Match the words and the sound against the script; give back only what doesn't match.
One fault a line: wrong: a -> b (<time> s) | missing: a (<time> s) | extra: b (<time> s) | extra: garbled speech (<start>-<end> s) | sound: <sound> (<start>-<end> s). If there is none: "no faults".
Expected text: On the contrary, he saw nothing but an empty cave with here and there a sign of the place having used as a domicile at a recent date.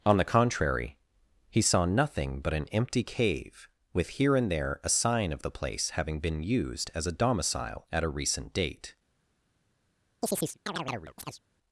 extra: been (6.2 s)
sound: chirp (10.2-11.4 s)